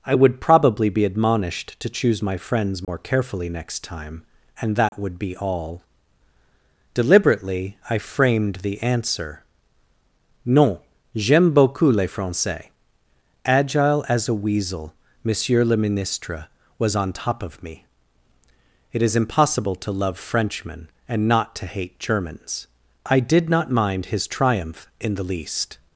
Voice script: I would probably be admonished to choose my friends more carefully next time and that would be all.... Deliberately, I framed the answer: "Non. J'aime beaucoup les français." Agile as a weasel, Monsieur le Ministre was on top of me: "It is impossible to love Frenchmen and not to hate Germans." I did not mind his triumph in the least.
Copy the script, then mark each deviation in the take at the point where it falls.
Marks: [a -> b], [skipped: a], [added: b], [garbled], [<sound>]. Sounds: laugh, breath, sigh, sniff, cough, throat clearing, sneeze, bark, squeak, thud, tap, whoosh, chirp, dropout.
I would probably be admonished to choose my friends more [dropout] carefully next time and that [dropout] would be all.... Deliberately, I framed the answer: "Non. J'aime beaucoup les français." Agile as a weasel, Monsieur le Ministre was on top of me: "It is impossible to love Frenchmen and not to hate Germans." I did not mind his triumph in the least.